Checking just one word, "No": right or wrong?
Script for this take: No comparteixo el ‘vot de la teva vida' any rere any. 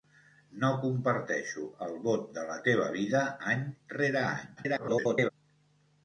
right